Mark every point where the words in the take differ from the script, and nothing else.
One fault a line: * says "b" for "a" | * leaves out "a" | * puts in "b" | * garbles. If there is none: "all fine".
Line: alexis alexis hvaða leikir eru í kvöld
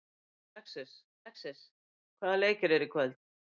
all fine